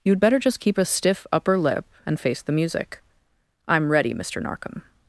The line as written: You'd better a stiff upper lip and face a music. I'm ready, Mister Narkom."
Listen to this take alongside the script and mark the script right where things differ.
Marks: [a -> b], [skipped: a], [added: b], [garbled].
You'd better [added: just keep] a stiff upper lip and face [a -> the] music. I'm ready, Mister Narkom."